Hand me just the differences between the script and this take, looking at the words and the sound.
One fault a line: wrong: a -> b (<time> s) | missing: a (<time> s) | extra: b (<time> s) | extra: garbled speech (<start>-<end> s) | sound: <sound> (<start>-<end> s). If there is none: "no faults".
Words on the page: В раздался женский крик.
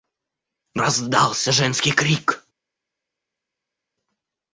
no faults